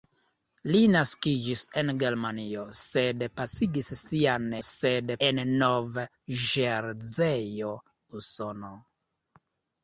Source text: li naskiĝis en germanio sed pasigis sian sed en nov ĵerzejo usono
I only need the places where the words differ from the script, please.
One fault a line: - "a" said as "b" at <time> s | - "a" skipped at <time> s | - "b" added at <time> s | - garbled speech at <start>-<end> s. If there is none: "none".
none